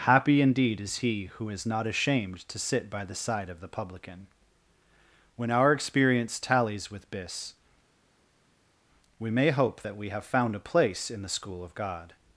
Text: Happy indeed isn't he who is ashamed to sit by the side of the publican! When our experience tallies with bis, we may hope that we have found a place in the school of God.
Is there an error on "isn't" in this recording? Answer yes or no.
yes